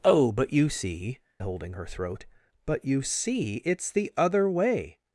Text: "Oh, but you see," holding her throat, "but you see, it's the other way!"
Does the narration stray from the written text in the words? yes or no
no